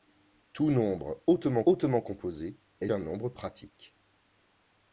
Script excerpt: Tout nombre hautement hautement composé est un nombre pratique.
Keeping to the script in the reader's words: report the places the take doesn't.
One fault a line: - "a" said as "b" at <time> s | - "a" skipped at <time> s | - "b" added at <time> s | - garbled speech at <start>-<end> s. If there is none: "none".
none